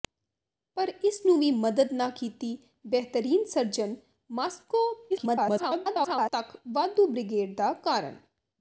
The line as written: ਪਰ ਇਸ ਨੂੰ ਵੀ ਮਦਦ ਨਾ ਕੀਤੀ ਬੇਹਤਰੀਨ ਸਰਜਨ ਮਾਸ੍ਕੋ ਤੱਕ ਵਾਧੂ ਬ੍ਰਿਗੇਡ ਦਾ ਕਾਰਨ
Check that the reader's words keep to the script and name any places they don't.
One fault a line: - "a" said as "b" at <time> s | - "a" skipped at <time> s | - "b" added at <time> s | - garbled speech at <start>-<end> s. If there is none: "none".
- garbled speech at 5.1-6.3 s